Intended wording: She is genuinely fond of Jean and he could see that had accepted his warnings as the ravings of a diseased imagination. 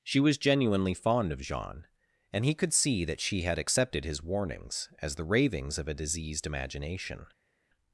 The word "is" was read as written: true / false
false